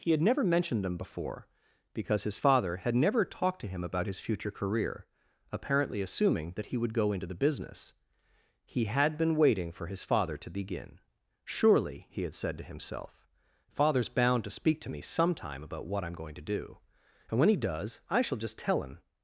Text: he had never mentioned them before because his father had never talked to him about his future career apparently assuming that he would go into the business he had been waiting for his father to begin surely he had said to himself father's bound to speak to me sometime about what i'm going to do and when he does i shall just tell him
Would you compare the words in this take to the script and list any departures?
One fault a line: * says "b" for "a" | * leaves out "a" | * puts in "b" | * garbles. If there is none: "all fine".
all fine